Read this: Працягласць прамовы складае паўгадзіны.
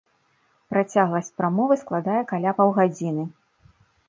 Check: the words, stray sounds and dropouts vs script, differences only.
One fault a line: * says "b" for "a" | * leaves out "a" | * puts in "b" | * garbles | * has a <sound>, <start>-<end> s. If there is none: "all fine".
* puts in "каля"